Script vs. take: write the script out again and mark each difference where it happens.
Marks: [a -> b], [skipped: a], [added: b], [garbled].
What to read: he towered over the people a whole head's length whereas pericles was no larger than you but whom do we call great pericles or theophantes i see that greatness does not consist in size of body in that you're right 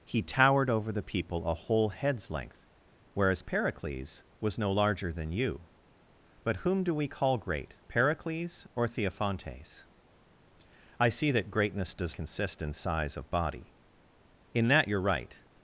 he towered over the people a whole head's length whereas pericles was no larger than you but whom do we call great pericles or theophantes i see that greatness does [skipped: not] consist in size of body in that you're right